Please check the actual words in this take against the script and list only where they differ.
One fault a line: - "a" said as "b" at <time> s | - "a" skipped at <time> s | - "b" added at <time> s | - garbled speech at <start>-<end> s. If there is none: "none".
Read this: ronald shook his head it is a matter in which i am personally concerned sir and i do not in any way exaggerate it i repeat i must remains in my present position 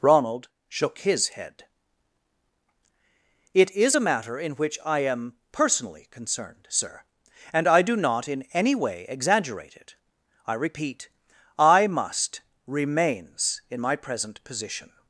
none